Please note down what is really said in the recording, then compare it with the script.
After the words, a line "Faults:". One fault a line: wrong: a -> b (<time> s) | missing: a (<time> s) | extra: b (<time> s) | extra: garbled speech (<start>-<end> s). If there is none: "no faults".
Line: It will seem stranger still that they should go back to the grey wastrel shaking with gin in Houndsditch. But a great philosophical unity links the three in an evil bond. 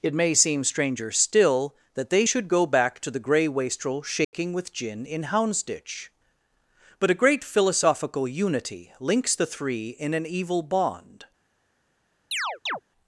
It may seem stranger still that they should go back to the grey wastrel shaking with gin in Houndsditch. But a great philosophical unity links the three in an evil bond.
Faults:
wrong: will -> may (0.1 s)